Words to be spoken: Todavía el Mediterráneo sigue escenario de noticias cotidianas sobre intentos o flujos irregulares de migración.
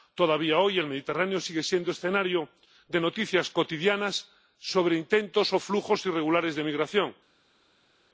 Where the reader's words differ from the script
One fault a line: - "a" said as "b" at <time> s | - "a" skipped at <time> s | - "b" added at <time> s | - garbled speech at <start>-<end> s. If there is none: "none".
- "hoy" added at 0.6 s
- "siendo" added at 1.6 s